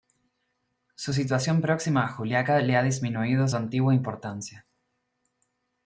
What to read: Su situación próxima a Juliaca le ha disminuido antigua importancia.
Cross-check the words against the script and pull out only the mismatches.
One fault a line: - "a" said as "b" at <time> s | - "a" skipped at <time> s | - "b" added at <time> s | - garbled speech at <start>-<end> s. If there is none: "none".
none